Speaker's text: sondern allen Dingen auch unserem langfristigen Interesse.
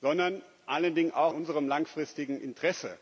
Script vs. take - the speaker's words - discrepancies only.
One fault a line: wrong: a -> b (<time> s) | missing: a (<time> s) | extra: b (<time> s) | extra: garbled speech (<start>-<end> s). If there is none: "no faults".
no faults